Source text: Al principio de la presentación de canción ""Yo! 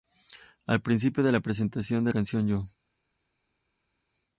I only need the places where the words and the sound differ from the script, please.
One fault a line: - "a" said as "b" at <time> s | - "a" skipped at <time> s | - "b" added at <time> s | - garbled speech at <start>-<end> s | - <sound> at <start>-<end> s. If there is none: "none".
none